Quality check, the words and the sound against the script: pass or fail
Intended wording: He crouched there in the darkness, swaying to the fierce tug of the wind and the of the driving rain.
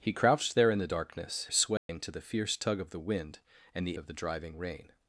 fail